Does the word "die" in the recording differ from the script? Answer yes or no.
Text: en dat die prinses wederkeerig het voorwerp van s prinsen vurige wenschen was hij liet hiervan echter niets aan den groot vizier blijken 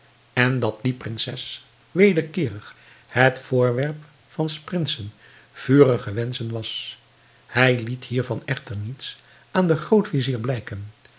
no